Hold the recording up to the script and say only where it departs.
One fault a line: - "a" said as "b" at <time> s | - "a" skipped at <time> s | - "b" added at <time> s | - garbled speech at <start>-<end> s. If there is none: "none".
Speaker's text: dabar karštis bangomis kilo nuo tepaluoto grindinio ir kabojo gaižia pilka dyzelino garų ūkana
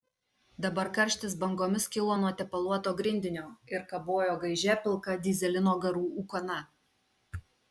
none